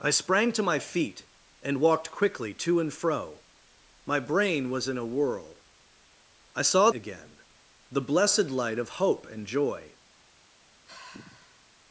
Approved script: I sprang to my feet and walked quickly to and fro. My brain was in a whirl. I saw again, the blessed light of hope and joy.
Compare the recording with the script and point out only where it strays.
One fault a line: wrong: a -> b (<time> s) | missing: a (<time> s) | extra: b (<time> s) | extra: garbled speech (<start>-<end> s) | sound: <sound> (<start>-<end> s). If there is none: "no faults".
sound: sigh (10.9-11.7 s)